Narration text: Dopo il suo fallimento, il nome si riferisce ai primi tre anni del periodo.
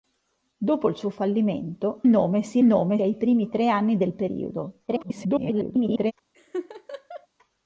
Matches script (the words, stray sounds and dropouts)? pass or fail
fail